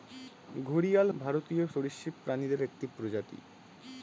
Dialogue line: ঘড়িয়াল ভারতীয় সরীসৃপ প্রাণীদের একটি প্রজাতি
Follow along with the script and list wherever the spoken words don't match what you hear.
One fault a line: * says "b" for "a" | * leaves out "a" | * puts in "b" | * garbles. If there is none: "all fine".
all fine